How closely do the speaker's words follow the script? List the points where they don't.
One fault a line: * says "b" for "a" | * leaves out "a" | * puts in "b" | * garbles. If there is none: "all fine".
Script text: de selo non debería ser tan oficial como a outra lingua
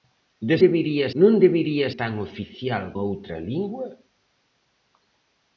* says "debería" for "selo"
* leaves out "ser"
* leaves out "como"